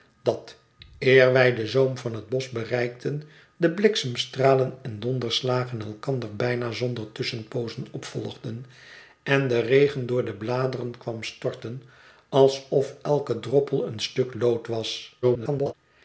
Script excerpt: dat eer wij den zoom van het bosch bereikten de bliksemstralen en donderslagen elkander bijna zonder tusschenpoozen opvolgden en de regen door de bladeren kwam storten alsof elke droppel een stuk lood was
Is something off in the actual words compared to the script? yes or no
yes